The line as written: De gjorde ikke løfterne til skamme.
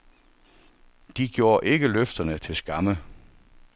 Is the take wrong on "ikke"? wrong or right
right